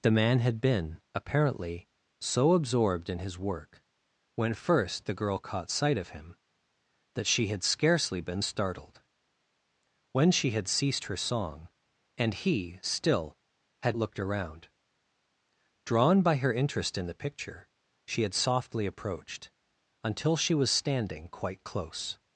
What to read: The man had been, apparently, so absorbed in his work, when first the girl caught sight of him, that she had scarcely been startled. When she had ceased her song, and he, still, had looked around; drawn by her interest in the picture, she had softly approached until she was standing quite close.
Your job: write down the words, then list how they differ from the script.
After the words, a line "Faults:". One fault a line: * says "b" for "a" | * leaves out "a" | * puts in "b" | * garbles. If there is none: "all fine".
The man had been, apparently, so absorbed in his work, when first the girl caught sight of him, that she had scarcely been startled. When she had ceased her song, and he, still, had looked around; drawn by her interest in the picture, she had softly approached until she was standing quite close.
Faults:
all fine